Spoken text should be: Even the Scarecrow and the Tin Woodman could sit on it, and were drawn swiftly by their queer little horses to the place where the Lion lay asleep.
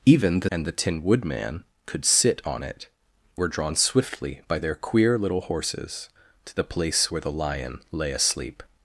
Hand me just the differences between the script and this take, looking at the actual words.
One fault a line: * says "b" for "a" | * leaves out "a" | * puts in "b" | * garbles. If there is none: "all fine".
* leaves out "Scarecrow"
* leaves out "and"